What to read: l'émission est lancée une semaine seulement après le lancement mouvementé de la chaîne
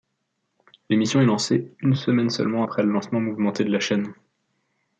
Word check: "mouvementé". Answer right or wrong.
right